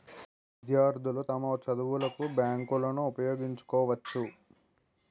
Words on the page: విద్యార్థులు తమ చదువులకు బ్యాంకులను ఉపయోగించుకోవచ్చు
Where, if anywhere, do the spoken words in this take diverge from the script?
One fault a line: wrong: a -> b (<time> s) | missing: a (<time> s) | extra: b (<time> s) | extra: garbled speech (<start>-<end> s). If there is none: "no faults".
no faults